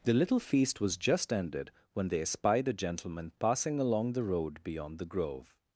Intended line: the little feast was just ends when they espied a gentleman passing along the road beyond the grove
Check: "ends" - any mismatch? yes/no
yes